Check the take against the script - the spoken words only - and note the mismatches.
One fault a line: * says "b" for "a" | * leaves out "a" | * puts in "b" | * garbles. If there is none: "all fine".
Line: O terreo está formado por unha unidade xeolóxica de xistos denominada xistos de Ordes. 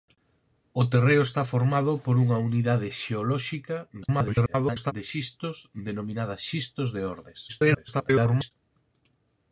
* garbles
* garbles